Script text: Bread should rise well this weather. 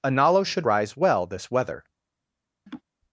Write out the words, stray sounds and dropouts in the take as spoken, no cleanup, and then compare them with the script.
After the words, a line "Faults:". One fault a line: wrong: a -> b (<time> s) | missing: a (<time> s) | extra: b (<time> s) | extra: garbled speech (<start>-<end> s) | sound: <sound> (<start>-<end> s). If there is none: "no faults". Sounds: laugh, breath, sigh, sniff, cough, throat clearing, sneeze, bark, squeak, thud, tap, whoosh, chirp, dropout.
Analo should rise well this weather.
Faults:
wrong: Bread -> Analo (0.0 s)
sound: laugh (2.7-2.8 s)